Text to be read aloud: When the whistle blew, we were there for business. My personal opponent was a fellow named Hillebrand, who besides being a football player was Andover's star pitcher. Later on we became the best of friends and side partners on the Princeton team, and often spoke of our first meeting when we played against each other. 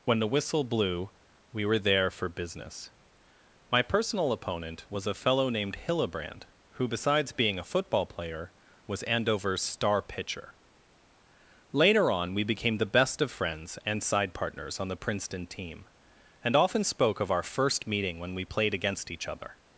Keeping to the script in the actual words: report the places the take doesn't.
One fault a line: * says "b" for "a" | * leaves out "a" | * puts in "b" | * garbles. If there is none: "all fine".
all fine